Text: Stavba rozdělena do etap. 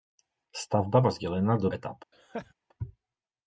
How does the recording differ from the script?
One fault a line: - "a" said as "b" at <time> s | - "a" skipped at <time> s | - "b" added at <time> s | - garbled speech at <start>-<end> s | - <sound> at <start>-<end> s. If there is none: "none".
- laugh at 2.1-2.5 s